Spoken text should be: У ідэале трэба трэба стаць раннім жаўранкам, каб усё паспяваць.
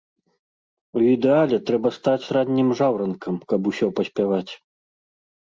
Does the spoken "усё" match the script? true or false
true